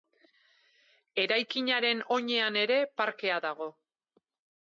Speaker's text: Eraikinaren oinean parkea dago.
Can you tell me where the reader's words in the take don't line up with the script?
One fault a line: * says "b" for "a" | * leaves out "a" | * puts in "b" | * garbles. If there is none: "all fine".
* puts in "ere"